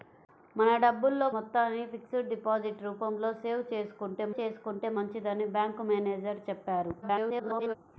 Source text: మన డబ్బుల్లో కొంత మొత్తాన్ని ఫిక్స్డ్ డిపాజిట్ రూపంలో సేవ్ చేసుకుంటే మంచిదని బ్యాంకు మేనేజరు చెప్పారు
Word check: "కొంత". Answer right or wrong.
wrong